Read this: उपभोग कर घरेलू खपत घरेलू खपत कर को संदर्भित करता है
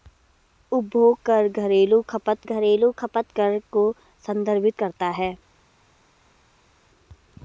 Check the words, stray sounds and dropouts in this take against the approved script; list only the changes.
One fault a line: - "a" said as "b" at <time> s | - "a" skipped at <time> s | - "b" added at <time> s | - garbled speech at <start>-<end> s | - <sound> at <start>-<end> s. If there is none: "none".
none